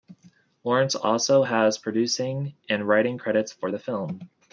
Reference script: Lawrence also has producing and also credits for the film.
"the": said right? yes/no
yes